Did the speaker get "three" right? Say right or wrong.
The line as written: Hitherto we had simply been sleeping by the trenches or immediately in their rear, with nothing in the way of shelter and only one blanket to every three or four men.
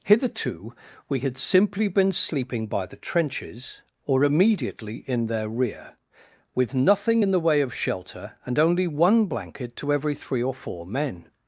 right